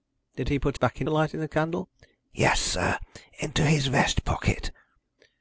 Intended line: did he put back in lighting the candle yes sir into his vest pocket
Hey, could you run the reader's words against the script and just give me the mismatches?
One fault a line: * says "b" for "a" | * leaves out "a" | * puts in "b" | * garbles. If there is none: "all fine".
all fine